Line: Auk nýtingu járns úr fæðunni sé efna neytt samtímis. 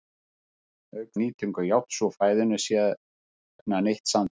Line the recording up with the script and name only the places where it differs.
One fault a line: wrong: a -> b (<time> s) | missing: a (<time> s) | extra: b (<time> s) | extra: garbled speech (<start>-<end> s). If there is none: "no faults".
no faults